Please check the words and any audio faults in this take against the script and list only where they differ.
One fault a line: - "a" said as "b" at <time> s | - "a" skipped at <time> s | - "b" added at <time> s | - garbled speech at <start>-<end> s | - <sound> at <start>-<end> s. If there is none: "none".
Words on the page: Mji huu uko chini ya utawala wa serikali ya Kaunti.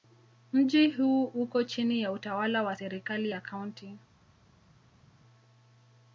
none